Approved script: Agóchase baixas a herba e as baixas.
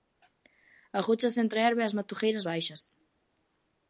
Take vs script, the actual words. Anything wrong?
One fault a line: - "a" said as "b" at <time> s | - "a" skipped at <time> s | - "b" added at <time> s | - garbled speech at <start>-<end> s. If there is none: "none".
- "baixas" said as "entre" at 1.4 s
- "matogueiras" added at 2.0 s